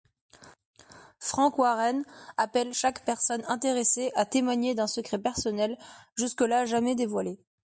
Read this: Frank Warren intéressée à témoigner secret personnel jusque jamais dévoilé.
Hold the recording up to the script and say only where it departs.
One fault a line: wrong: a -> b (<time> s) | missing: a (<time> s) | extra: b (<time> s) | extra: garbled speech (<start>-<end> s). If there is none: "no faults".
extra: appelle chaque personne (2.4 s)
extra: d'un (4.7 s)
extra: là (6.4 s)